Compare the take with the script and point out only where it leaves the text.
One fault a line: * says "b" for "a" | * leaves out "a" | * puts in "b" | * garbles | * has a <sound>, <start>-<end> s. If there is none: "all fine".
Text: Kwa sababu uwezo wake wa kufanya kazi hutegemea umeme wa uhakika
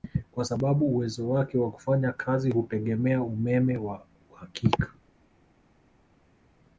all fine